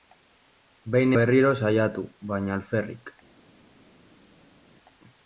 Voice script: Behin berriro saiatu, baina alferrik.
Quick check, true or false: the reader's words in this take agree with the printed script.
true